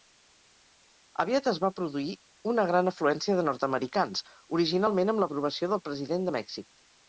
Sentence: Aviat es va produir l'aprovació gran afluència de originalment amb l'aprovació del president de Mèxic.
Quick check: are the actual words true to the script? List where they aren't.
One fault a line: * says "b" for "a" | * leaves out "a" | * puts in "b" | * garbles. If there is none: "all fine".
* says "una" for "l'aprovació"
* puts in "nord americans"